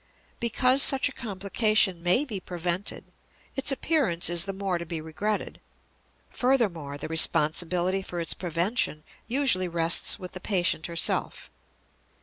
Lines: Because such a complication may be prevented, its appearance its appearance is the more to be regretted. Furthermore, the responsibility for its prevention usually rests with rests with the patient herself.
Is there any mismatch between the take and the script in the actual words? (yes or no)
yes